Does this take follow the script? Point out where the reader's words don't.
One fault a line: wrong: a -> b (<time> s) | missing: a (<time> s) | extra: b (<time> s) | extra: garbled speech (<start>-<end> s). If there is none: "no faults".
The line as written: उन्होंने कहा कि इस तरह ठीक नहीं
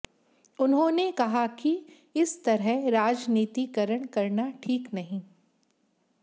extra: राजनीतिकरण करना (2.9 s)